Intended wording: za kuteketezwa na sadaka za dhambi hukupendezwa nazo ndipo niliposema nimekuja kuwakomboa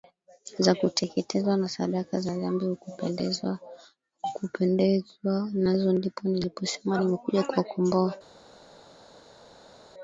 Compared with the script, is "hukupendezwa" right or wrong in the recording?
right